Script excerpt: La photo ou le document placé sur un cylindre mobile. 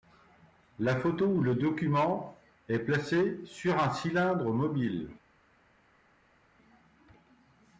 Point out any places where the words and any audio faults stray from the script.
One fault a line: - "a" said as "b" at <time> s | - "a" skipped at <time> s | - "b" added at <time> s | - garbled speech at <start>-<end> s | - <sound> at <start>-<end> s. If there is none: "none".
- "est" added at 2.7 s